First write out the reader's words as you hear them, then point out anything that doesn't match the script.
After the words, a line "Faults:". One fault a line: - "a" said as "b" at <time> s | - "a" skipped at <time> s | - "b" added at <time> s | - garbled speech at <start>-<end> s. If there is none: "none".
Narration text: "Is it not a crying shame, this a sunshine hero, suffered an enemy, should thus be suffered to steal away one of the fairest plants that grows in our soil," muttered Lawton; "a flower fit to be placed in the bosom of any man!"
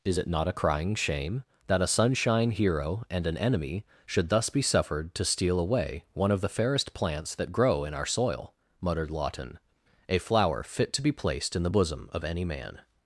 "Is it not a crying shame, that a sunshine hero, and an enemy, should thus be suffered to steal away one of the fairest plants that grow in our soil," muttered Lawton; "a flower fit to be placed in the bosom of any man!"
Faults:
- "this" said as "that" at 1.7 s
- "suffered" said as "and" at 3.1 s
- "grows" said as "grow" at 7.5 s